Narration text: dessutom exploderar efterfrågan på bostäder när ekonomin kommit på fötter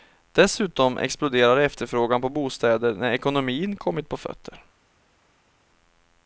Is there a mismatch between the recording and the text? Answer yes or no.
no